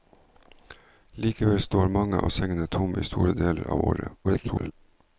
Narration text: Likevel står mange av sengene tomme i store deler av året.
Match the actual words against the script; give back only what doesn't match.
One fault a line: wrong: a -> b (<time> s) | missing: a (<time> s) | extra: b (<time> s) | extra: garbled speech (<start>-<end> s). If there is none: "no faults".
extra: garbled speech (4.2-4.7 s)